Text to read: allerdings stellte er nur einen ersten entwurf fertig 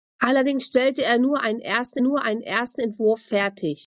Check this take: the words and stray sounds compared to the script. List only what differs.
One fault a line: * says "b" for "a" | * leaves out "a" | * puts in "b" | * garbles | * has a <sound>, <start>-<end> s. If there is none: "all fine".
* puts in "nur einen ersten"